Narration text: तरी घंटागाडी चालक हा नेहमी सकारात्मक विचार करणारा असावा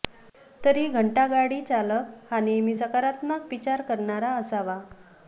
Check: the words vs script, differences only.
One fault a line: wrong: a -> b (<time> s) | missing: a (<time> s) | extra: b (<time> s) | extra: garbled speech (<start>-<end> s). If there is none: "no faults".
no faults